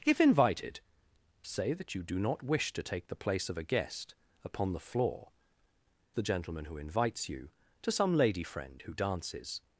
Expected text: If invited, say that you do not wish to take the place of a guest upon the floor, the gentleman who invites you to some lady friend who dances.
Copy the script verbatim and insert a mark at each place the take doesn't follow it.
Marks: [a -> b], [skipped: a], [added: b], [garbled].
If invited, say that you do not wish to take the place of a guest upon the floor, the gentleman who invites you to some lady friend who dances.